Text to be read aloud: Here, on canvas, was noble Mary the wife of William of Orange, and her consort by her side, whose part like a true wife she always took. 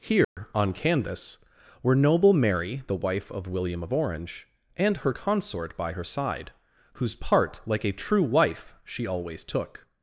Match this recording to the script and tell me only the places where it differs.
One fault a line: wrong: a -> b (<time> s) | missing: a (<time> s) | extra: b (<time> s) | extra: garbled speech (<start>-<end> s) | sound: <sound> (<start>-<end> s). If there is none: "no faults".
sound: dropout (0.2-0.4 s)
wrong: was -> were (1.8 s)